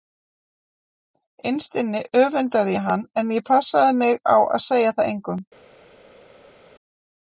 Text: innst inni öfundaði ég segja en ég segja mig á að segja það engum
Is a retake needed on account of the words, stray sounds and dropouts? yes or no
yes